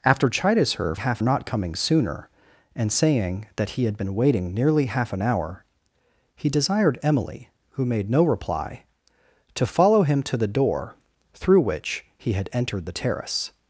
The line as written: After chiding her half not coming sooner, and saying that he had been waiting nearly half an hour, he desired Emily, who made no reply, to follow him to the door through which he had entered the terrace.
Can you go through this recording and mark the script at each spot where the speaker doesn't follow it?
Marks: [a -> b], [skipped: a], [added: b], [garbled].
After chiding her half not coming sooner, and saying that he had been waiting nearly half an hour, he desired Emily, who made no reply, to follow him to the door through which he had entered the terrace.